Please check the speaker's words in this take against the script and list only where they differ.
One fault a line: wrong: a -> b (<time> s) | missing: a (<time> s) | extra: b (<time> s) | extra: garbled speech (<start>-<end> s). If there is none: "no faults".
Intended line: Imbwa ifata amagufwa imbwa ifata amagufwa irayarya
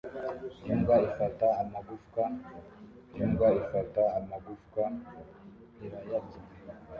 no faults